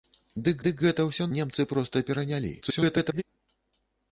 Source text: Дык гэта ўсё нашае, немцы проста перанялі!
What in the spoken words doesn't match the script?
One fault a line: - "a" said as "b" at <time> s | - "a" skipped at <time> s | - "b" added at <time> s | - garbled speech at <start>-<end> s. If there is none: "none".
- "дык" added at 0.6 s
- "нашае" skipped at 1.3 s
- garbled speech at 2.6-3.2 s